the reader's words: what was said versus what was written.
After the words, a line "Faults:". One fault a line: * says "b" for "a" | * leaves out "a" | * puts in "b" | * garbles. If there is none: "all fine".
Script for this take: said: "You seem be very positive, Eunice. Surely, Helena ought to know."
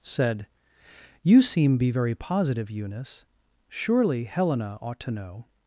said: "You seem be very positive, Eunice. Surely, Helena ought to know."
Faults:
all fine